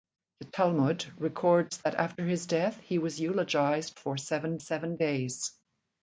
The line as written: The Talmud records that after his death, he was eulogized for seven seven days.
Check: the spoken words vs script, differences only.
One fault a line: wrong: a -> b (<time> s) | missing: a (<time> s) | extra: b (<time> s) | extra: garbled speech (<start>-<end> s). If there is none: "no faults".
no faults